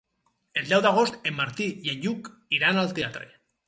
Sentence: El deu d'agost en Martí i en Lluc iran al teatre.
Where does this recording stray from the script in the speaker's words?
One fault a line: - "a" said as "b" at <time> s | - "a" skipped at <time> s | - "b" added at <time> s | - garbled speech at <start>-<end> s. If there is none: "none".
none